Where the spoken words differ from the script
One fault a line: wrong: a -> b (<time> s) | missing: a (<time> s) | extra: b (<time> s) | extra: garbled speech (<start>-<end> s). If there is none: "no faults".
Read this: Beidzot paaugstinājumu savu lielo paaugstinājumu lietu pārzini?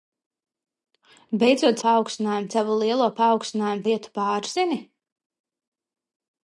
no faults